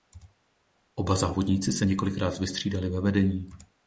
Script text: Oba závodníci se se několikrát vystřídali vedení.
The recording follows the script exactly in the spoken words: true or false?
false